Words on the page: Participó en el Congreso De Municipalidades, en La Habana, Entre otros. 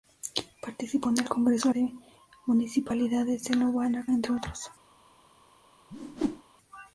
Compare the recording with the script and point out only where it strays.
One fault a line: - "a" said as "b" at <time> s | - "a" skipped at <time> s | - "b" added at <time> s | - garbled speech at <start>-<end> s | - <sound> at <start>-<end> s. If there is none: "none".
- whoosh at 5.9-6.4 s